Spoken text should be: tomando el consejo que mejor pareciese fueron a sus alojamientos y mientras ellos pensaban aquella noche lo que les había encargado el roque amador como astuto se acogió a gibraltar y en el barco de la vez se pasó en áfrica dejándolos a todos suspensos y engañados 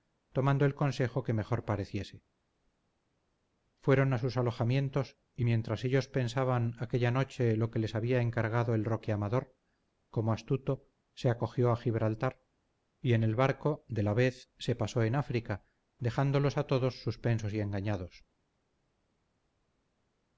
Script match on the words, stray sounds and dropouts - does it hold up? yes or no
yes